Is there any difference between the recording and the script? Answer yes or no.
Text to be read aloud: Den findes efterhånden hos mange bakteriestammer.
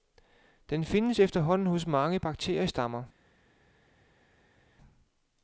no